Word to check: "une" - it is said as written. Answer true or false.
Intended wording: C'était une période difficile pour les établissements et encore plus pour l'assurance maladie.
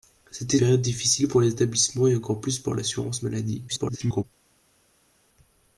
false